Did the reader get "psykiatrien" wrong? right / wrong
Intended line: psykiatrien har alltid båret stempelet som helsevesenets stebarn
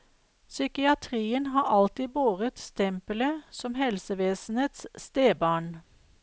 right